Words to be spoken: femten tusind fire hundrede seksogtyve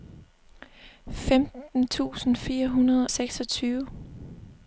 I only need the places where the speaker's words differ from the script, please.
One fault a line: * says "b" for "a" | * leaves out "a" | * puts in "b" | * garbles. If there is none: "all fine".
all fine